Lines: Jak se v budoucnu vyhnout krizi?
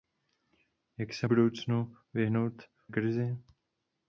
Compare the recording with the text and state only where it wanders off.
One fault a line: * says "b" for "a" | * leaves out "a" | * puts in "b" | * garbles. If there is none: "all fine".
all fine